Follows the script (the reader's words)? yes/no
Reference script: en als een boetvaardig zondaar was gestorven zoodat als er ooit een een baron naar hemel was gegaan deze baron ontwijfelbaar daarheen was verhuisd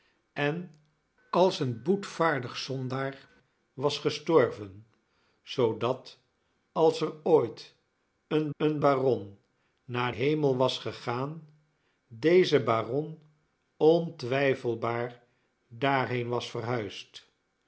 yes